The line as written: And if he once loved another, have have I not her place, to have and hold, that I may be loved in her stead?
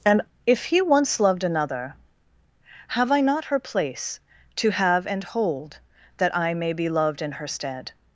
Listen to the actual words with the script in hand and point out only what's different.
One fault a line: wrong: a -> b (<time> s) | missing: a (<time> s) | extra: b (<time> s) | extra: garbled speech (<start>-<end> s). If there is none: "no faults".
missing: have (3.1 s)